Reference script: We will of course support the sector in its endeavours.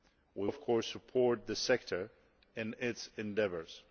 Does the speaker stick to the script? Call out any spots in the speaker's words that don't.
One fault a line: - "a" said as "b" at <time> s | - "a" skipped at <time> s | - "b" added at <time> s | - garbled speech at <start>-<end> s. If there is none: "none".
- "will" skipped at 0.5 s